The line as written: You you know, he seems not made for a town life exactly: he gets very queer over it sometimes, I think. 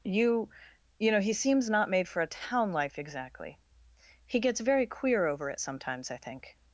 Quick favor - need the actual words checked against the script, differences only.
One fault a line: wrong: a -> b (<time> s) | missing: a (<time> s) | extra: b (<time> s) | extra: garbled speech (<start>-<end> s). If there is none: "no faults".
no faults